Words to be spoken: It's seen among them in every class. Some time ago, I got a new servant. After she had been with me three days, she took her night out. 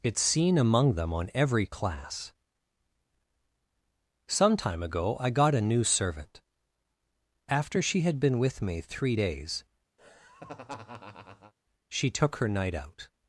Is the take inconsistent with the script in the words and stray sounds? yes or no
yes